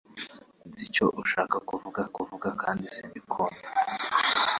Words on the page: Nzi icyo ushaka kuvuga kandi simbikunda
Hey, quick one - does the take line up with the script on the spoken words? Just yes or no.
no